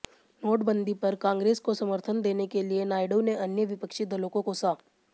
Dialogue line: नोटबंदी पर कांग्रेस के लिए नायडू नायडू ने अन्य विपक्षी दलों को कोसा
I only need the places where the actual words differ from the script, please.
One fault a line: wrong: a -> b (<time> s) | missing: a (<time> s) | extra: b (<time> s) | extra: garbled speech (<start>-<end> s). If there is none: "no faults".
extra: को समर्थन देने (1.6 s)
missing: नायडू (3.2 s)